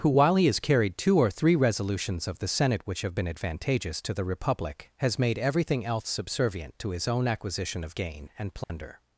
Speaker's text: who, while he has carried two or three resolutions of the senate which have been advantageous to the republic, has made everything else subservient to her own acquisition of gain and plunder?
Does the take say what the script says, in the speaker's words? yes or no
no